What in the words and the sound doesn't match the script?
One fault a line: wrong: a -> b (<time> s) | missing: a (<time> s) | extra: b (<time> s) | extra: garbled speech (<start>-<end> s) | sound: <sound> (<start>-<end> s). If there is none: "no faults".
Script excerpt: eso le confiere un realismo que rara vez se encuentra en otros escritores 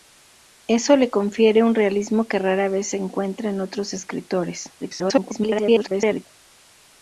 extra: garbled speech (4.8-6.3 s)